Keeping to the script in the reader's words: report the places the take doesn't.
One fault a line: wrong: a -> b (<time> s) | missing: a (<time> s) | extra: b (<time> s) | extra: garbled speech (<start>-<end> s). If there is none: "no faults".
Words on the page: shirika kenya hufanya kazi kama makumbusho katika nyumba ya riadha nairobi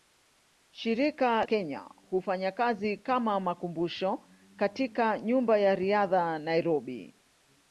no faults